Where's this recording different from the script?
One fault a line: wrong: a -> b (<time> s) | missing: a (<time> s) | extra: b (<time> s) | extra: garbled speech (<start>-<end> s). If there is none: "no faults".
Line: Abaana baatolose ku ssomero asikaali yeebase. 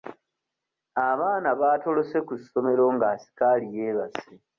extra: nga (2.9 s)